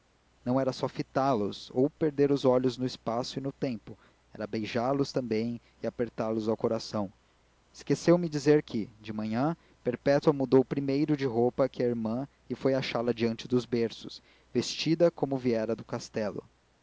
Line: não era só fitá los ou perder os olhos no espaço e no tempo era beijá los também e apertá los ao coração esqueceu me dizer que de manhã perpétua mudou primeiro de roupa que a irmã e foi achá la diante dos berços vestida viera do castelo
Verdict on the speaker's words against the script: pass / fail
fail